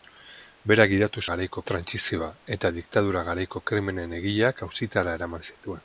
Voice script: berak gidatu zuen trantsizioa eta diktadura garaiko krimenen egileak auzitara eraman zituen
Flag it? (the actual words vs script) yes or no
yes